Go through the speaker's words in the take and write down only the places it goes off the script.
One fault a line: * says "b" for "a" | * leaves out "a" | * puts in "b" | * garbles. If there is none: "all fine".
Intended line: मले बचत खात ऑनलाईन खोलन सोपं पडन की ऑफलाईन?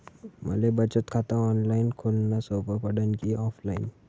all fine